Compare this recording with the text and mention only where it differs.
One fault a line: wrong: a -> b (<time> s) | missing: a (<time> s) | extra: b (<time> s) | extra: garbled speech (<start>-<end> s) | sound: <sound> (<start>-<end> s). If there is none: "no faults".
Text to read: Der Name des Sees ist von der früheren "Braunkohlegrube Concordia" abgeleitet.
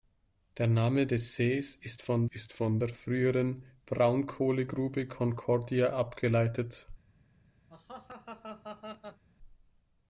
extra: ist von (2.2 s)
sound: laugh (7.7-9.2 s)